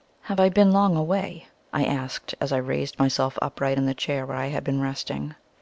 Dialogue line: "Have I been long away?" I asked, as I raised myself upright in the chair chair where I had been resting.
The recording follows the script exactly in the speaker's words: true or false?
false